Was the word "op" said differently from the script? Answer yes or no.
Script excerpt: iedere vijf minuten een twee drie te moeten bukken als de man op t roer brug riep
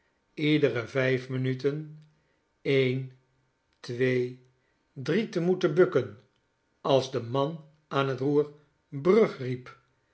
yes